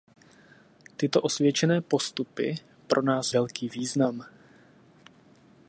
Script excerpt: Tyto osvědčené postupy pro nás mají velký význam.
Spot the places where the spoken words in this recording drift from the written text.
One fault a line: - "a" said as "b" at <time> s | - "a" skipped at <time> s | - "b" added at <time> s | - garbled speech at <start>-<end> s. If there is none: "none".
- "mají" skipped at 3.3 s